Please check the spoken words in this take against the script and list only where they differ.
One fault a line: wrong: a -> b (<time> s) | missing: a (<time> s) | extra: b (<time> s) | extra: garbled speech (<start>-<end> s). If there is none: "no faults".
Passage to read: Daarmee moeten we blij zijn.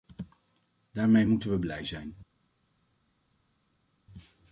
no faults